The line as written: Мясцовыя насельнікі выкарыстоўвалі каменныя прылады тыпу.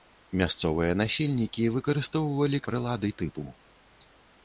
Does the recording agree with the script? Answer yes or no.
no